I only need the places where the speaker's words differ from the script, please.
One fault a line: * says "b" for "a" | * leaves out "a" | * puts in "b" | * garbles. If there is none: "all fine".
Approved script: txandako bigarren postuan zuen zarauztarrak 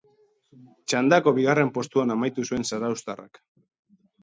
* puts in "amaitu"